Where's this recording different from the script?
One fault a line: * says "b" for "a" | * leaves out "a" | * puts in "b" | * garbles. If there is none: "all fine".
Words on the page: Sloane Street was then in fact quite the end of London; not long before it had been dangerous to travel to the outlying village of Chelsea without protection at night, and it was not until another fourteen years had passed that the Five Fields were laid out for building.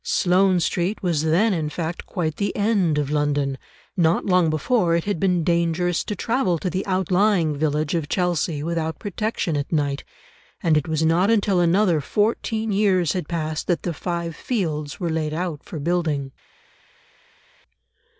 all fine